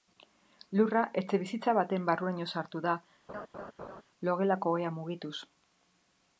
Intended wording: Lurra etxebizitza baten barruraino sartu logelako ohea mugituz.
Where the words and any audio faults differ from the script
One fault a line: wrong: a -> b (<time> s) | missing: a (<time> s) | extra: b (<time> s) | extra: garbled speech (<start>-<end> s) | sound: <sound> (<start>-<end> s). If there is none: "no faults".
extra: da (2.9 s)
sound: laugh (3.3-4.0 s)